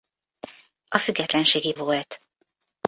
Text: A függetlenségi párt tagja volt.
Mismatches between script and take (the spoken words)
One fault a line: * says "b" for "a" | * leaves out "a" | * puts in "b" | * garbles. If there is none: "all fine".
* leaves out "párt tagja"